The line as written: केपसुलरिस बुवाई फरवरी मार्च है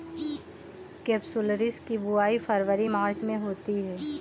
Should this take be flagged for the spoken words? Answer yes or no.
yes